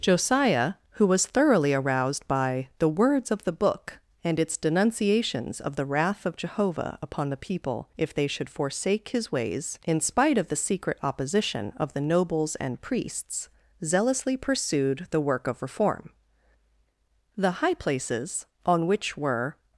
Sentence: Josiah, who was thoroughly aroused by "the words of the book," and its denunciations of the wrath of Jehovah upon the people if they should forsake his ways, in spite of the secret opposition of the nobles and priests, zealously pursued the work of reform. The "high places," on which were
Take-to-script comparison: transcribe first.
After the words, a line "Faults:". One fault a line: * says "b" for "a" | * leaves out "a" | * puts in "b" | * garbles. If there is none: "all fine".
Josiah, who was thoroughly aroused by "the words of the book," and its denunciations of the wrath of Jehovah upon the people if they should forsake his ways, in spite of the secret opposition of the nobles and priests, zealously pursued the work of reform. The "high places," on which were
Faults:
all fine